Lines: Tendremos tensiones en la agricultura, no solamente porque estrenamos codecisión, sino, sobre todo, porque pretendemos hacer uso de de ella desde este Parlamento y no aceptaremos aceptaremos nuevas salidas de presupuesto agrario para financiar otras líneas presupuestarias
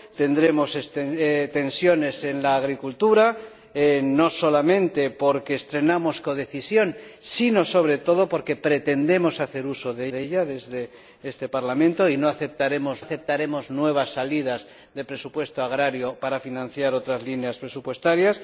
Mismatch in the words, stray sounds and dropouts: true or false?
false